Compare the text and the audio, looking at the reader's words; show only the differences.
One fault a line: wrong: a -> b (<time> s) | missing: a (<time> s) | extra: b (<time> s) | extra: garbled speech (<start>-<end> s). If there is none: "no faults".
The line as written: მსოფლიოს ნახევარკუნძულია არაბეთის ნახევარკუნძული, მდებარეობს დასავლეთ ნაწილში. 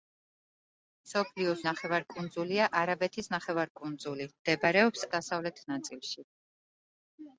no faults